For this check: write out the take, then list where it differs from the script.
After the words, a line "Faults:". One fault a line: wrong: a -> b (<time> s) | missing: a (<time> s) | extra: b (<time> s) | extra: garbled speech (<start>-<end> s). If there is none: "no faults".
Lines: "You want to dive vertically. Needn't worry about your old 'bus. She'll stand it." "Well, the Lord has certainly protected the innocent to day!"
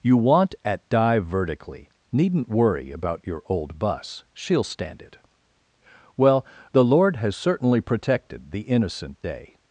"You want at dive vertically. Needn't worry about your old 'bus. She'll stand it." "Well, the Lord has certainly protected the innocent day!"
Faults:
wrong: to -> at (0.6 s)
missing: to (9.2 s)